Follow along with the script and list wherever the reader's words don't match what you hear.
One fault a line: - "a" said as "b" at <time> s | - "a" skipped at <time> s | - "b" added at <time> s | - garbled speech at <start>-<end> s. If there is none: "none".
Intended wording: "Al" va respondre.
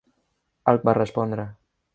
none